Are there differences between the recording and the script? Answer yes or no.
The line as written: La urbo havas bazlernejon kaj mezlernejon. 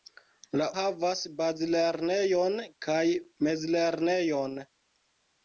yes